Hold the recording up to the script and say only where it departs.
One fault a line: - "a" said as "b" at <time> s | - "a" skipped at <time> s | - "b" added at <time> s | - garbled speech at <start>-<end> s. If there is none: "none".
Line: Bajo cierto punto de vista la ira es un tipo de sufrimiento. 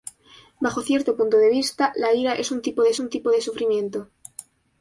- "un tipo de" added at 3.0 s